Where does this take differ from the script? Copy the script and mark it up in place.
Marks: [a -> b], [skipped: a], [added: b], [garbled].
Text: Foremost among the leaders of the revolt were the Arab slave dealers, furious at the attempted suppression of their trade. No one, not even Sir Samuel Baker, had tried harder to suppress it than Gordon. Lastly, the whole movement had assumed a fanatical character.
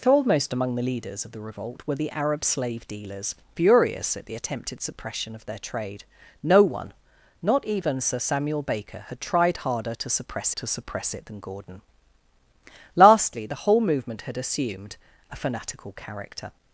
Foremost among the leaders of the revolt were the Arab slave dealers, furious at the attempted suppression of their trade. No one, not even Sir Samuel Baker, had tried harder to suppress [added: to suppress] it than Gordon. Lastly, the whole movement had assumed a fanatical character.